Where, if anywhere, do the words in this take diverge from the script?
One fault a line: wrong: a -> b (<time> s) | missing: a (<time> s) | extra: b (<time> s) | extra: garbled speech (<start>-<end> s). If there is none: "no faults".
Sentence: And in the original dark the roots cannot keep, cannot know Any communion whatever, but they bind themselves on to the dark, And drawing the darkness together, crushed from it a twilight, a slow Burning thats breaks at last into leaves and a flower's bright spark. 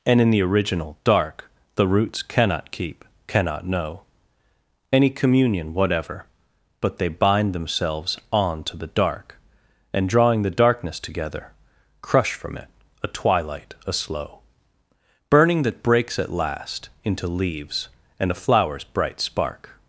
wrong: crushed -> crush (12.0 s)
wrong: thats -> that (15.6 s)